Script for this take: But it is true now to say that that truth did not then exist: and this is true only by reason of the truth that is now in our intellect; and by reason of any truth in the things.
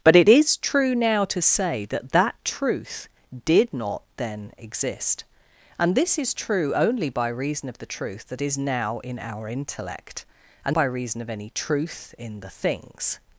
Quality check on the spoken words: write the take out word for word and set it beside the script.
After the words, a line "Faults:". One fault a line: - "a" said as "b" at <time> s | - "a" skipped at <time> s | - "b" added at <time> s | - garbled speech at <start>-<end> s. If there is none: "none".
But it is true now to say that that truth did not then exist: and this is true only by reason of the truth that is now in our intellect; and by reason of any truth in the things.
Faults:
none